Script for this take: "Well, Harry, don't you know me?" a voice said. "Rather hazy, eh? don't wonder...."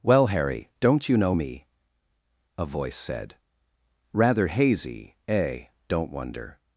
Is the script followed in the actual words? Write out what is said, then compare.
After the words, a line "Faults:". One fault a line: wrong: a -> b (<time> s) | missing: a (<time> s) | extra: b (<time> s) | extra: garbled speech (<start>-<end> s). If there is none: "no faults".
"Well, Harry, don't you know me?" a voice said. "Rather hazy, eh? don't wonder...."
Faults:
no faults